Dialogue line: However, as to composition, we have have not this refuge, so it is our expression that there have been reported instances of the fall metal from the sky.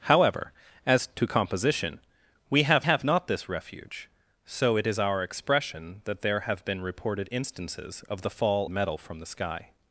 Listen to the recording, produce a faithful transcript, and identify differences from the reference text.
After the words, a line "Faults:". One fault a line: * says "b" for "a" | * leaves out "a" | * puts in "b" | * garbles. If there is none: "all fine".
However, as to composition, we have have not this refuge, so it is our expression that there have been reported instances of the fall metal from the sky.
Faults:
all fine